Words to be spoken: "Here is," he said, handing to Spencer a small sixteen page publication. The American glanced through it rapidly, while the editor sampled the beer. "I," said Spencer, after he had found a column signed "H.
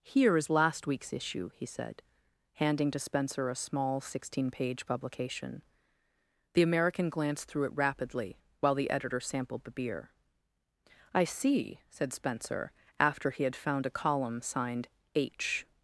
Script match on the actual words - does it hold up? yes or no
no